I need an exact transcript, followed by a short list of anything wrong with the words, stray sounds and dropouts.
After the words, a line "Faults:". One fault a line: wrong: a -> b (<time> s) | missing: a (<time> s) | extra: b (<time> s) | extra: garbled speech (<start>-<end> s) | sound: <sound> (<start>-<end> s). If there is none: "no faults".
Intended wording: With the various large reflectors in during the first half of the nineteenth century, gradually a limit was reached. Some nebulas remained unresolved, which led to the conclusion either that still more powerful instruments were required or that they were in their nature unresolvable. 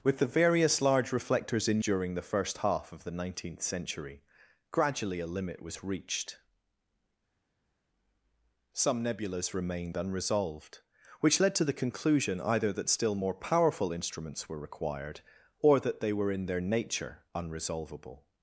With the various large reflectors in during the first half of the nineteenth century, gradually a limit was reached. Some nebulas remained unresolved, which led to the conclusion either that still more powerful instruments were required or that they were in their nature unresolvable.
Faults:
no faults